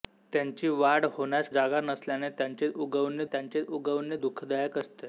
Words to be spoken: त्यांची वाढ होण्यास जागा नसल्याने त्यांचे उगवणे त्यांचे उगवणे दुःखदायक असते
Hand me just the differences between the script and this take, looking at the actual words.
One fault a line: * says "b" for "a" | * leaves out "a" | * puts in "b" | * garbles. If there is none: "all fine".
all fine